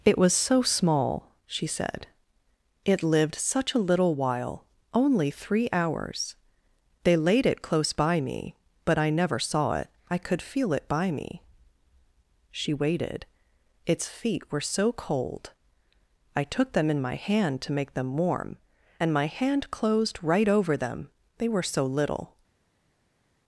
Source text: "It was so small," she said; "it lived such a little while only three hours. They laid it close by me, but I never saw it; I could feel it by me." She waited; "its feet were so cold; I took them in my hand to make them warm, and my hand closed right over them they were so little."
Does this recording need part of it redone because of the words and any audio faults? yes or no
no